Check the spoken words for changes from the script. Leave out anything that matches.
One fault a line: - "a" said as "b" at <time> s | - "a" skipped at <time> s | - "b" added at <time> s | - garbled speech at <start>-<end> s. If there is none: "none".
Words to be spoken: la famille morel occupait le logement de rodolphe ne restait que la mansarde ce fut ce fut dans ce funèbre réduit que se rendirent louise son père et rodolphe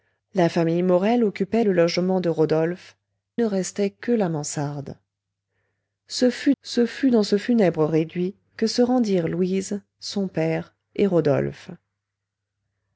none